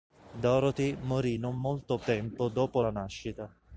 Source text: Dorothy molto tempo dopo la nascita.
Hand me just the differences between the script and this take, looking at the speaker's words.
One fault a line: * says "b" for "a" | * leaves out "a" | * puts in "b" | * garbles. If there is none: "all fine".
* puts in "morì non"